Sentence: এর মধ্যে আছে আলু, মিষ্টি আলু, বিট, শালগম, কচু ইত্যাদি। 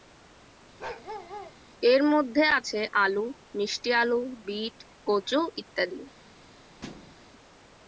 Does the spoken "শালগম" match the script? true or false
false